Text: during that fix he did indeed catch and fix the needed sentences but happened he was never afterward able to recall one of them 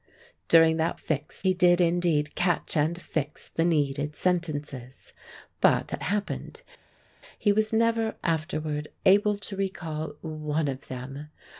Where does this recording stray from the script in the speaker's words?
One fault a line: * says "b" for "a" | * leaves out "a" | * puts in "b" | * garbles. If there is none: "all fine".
all fine